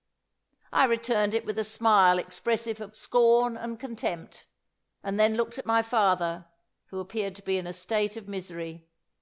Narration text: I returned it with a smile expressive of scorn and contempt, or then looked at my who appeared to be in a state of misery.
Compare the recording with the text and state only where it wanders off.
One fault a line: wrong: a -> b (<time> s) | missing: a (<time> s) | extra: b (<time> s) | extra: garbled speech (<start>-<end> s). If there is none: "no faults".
wrong: or -> and (5.0 s)
extra: father (5.8 s)